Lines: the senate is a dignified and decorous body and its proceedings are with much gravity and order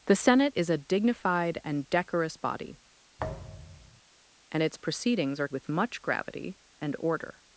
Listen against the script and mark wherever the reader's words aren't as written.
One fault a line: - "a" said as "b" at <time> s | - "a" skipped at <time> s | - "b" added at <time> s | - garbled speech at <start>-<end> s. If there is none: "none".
none